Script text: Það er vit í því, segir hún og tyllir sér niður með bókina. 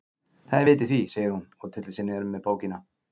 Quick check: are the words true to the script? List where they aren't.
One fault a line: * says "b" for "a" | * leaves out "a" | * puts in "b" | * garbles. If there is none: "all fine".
all fine